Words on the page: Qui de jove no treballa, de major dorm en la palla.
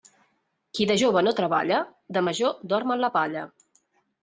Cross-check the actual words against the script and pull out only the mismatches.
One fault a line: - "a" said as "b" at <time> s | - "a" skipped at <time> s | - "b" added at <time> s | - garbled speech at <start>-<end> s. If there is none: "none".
none